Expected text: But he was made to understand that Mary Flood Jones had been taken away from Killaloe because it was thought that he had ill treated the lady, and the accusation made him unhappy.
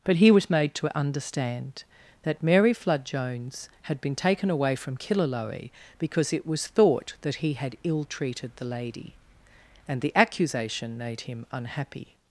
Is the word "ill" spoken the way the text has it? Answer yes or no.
yes